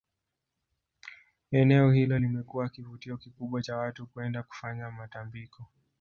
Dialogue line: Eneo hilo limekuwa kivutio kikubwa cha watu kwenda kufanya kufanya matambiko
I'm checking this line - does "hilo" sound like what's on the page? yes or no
yes